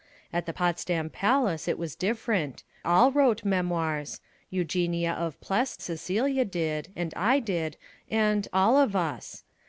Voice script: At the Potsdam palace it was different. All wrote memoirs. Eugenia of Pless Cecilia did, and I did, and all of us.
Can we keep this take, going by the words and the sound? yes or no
yes